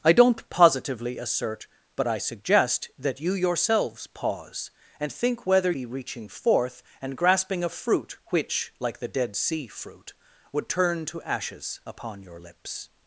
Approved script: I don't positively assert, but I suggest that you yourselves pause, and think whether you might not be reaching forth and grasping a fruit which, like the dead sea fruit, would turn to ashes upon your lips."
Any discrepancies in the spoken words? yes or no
yes